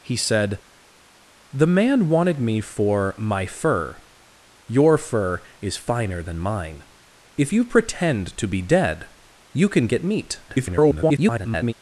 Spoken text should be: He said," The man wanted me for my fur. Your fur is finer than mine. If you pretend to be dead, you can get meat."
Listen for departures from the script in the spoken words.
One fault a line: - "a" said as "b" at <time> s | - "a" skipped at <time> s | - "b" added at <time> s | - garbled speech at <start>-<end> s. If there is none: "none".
- garbled speech at 10.5-11.7 s